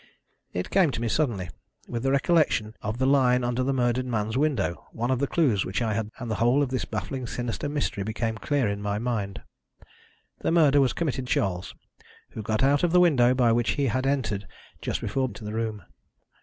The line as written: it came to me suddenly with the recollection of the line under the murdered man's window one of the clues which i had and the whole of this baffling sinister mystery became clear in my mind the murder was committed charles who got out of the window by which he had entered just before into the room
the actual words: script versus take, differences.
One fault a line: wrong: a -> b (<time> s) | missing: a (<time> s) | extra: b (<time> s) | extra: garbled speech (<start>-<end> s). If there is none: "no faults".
no faults